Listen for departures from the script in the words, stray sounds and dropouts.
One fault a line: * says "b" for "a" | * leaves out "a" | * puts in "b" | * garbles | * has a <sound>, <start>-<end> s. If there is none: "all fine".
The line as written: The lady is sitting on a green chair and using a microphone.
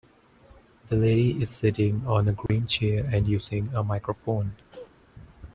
* has a dropout, 2.5-2.5 s
* has a cough, 4.7-5.0 s